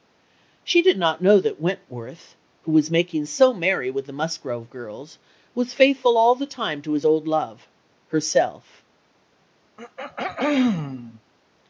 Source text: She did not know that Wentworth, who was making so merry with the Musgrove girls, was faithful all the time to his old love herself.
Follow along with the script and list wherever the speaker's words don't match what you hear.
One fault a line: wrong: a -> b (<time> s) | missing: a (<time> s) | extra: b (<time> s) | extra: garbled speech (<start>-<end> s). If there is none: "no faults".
no faults